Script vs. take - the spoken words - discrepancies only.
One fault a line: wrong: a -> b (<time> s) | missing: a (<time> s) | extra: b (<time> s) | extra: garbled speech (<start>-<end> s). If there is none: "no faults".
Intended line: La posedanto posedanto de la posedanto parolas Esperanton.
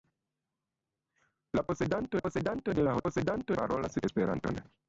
no faults